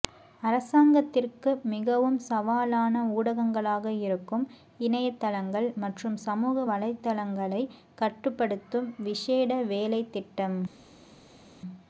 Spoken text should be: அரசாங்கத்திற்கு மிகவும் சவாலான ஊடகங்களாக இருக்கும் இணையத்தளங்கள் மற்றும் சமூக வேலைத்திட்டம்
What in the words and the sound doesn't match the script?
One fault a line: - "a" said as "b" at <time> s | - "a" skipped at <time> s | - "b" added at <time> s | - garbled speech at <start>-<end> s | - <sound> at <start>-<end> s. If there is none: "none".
- "வலைத்தளங்களை கட்டுப்படுத்தும் விசேட" added at 6.7 s